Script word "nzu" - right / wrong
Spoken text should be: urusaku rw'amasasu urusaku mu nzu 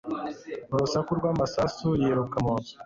right